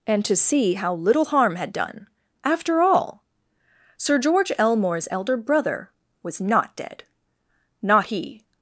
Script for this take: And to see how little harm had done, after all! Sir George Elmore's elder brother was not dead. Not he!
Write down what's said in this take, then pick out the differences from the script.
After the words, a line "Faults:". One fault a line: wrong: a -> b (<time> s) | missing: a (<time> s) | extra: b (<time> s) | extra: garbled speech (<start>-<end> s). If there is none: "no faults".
And to see how little harm had done, after all! Sir George Elmore's elder brother was not dead. Not he!
Faults:
no faults